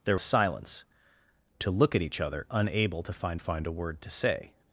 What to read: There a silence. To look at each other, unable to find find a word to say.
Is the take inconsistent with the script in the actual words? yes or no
no